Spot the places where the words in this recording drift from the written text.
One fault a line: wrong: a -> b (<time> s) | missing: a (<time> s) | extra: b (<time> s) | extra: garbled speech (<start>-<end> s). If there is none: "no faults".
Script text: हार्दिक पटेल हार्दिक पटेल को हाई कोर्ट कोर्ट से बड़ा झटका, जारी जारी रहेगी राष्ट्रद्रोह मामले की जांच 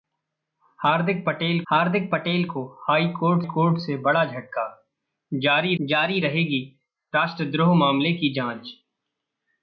no faults